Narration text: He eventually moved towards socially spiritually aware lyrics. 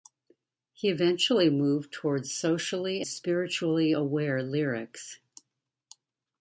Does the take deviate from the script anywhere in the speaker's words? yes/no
no